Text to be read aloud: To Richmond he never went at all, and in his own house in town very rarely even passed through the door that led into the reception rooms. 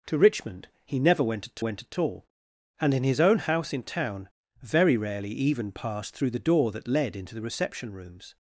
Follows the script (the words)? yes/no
no